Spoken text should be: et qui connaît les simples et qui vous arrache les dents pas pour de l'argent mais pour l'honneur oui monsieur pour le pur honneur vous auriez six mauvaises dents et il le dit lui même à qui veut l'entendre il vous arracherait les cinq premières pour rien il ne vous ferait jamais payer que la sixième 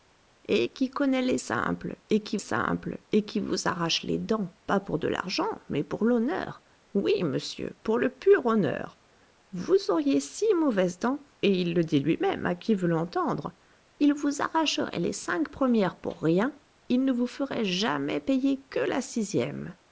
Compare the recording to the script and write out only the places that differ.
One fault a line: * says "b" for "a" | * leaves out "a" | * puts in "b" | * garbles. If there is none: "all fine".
* puts in "simples et qui"